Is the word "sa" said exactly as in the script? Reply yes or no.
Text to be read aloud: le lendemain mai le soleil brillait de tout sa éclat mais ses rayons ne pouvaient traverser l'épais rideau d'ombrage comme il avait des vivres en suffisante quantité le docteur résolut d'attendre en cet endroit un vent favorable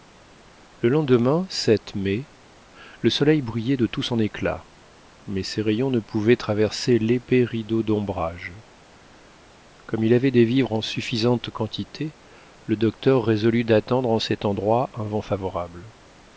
no